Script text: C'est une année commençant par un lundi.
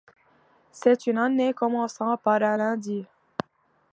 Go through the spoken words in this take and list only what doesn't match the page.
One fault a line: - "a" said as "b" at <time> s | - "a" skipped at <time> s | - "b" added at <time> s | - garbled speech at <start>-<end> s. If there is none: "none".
none